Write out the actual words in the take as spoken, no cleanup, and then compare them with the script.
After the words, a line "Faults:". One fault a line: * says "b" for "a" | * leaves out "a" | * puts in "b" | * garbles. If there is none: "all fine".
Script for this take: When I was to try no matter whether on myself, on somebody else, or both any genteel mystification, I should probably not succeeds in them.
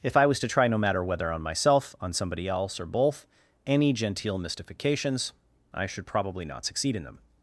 If I was to try no matter whether on myself, on somebody else, or both any genteel mystifications, I should probably not succeed in them.
Faults:
* says "If" for "When"
* says "mystifications" for "mystification"
* says "succeed" for "succeeds"